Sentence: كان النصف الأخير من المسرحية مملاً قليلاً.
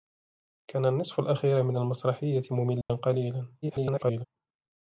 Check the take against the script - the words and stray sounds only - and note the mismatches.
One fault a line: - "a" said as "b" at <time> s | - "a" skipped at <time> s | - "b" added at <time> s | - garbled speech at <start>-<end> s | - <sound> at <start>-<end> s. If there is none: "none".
- dropout at 2.8-2.9 s
- garbled speech at 3.6-4.3 s